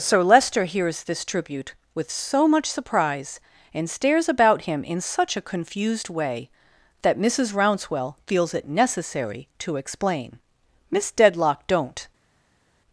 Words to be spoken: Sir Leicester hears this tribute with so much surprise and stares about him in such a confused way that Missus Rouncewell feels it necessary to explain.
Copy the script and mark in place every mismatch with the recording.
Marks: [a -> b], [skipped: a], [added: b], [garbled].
Sir Leicester hears this tribute with so much surprise and stares about him in such a confused way that Missus Rouncewell feels it necessary to explain. [added: Miss Dedlock don't]